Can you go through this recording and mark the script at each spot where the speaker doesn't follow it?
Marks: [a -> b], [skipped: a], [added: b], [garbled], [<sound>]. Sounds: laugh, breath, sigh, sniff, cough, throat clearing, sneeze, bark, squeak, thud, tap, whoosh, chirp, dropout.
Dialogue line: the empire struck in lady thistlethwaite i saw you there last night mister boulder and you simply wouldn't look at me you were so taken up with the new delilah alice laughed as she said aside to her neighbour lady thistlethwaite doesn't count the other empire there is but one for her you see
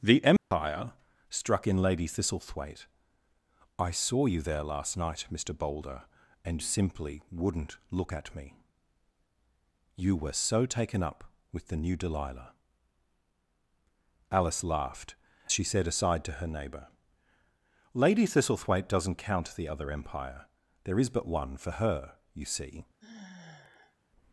the empire [dropout] struck in lady thistlethwaite i saw you there last night mister boulder and [skipped: you] simply wouldn't look at me you were so taken up with the new delilah alice laughed [skipped: as] she said aside to her neighbour lady thistlethwaite doesn't count the other empire there is but one for her you see [sigh]